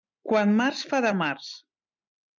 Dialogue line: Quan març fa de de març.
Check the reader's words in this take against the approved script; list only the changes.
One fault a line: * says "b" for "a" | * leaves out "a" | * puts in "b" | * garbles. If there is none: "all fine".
all fine